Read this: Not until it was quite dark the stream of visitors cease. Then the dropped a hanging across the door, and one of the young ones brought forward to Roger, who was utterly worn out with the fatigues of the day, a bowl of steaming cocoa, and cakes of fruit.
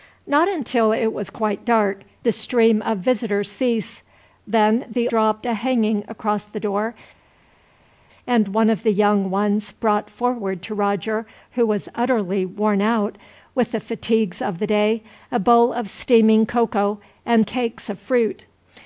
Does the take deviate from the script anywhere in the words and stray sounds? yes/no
no